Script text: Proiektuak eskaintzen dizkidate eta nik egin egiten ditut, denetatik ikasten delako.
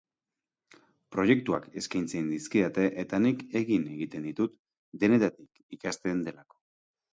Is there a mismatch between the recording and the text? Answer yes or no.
no